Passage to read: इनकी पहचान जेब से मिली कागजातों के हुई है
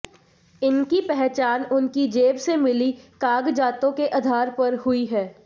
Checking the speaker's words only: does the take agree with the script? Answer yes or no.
no